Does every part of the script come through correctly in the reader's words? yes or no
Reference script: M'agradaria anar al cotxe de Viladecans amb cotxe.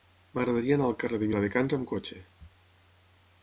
no